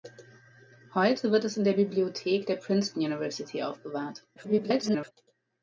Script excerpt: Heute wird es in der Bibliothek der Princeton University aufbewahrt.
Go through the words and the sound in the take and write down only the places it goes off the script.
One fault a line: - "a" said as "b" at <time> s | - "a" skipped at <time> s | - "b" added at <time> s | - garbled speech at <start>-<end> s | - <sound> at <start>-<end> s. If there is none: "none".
- garbled speech at 4.4-5.1 s